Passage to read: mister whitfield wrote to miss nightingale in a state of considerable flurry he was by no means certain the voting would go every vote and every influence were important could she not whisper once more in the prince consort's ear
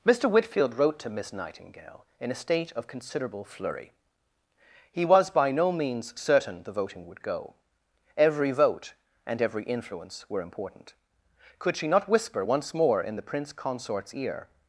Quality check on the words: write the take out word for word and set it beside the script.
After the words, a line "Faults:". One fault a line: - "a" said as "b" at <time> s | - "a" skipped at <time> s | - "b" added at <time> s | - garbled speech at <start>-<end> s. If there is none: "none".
mister whitfield wrote to miss nightingale in a state of considerable flurry he was by no means certain the voting would go every vote and every influence were important could she not whisper once more in the prince consort's ear
Faults:
none